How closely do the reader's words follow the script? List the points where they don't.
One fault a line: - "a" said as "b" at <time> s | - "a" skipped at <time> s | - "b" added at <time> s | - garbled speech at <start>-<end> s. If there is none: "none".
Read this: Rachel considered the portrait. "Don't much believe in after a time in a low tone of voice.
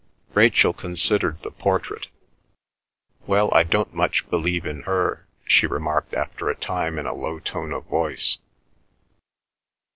- "Well I" added at 3.3 s
- "her she remarked" added at 4.8 s